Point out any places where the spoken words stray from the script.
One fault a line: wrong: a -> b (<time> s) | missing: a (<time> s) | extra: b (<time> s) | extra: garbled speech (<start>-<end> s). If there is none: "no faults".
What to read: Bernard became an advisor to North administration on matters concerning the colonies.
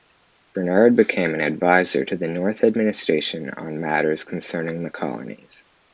extra: the (2.2 s)